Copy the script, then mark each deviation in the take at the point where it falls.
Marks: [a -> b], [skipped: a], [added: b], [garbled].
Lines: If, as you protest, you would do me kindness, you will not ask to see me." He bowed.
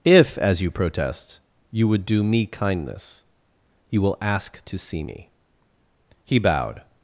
If, as you protest, you would do me kindness, you will [skipped: not] ask to see me." He bowed.